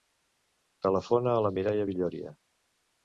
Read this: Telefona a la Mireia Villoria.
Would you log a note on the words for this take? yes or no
no